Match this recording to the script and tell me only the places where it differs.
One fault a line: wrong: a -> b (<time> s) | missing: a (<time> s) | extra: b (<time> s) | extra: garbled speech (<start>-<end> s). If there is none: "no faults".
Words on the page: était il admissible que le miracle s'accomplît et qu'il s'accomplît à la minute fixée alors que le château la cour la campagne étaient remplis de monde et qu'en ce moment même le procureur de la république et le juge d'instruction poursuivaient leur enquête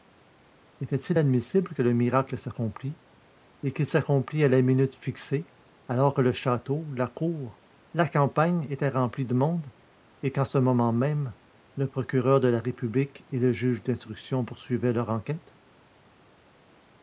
no faults